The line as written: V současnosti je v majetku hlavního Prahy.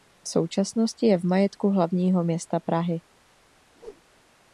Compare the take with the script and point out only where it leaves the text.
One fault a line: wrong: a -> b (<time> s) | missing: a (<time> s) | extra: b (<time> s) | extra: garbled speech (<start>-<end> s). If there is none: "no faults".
extra: města (2.2 s)